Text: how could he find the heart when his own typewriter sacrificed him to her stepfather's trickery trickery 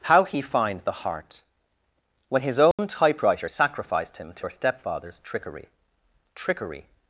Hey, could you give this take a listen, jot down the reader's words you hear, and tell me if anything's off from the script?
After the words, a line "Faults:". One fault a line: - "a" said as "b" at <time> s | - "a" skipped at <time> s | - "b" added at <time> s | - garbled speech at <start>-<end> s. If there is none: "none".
how he find the heart when his own typewriter sacrificed him to her stepfather's trickery trickery
Faults:
- "could" skipped at 0.2 s